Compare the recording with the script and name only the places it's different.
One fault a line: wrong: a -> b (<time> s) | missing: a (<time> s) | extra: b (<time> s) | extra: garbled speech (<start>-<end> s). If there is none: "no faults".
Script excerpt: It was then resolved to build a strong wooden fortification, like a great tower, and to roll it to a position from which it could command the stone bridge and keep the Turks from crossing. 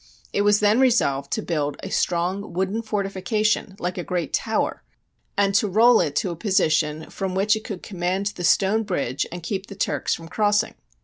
no faults